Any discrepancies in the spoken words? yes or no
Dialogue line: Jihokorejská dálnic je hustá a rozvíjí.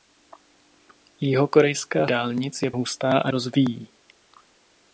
no